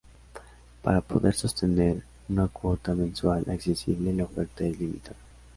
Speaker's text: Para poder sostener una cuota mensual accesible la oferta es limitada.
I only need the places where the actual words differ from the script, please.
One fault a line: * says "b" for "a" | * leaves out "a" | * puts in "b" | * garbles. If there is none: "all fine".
all fine